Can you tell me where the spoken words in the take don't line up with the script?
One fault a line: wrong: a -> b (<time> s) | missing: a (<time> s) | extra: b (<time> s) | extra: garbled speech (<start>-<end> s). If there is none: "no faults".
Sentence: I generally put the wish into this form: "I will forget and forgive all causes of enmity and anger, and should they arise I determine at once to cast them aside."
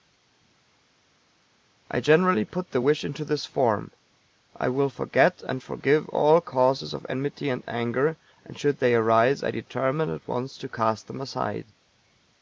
no faults